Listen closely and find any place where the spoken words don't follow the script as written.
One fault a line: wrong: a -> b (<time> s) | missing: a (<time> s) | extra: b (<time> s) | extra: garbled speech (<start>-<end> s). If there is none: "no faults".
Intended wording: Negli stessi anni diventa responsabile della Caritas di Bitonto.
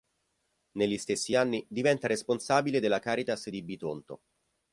no faults